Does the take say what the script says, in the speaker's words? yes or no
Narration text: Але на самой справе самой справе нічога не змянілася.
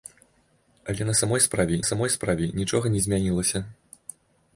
yes